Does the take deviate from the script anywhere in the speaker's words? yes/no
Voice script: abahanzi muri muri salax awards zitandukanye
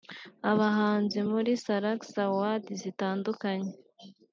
yes